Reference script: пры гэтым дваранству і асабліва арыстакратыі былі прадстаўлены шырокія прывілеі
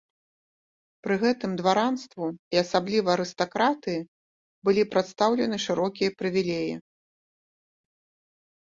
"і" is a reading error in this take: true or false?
false